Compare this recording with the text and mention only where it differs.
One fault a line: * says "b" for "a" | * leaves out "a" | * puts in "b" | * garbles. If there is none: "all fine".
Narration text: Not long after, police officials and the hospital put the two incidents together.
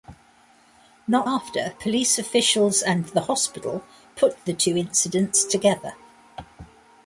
* leaves out "long"